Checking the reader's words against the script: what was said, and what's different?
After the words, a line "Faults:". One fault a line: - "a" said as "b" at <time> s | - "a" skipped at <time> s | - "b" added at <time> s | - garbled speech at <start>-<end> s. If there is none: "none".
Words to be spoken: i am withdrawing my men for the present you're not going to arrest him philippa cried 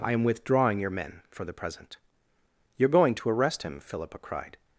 i am withdrawing your men for the present you're going to arrest him philippa cried
Faults:
- "my" said as "your" at 0.8 s
- "not" skipped at 2.9 s